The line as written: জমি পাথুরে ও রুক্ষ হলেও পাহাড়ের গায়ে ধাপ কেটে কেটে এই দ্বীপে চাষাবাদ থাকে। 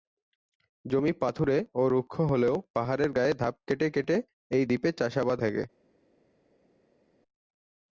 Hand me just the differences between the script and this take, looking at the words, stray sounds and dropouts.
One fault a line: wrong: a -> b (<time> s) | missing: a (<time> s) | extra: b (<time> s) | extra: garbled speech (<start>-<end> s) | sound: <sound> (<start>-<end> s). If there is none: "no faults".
no faults